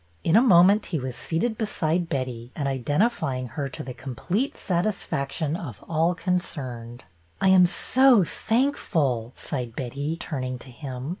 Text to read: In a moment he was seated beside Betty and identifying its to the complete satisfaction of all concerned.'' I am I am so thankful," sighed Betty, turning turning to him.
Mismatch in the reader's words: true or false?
true